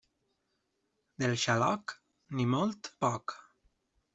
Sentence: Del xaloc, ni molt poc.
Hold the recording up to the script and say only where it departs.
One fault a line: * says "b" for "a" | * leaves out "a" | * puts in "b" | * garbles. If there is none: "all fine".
all fine